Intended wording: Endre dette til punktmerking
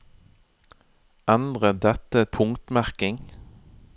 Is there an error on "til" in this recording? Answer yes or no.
yes